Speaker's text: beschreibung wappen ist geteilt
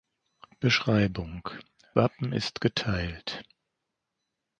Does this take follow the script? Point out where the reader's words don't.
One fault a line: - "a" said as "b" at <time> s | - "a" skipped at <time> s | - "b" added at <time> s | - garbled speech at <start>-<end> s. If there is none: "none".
none